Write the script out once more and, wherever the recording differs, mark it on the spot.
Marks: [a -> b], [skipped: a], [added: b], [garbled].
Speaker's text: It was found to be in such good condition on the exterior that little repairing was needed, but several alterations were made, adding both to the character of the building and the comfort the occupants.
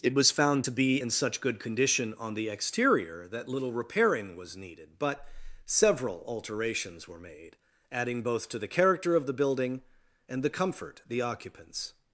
It was found to be in such good condition on the exterior that little repairing was needed, but several alterations were made, adding both to the character of the building and the comfort the occupants.